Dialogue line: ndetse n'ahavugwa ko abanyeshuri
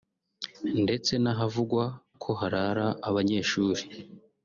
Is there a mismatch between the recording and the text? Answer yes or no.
yes